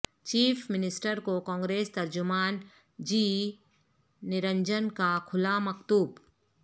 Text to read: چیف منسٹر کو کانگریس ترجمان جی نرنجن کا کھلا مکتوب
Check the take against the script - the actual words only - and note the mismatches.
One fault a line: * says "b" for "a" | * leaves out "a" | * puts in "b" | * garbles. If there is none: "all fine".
all fine